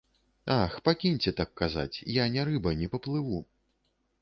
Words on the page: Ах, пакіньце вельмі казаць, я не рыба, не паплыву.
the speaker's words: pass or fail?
fail